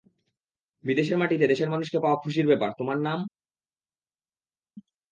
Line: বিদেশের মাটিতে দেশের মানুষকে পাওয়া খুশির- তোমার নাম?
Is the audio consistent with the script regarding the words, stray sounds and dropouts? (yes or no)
no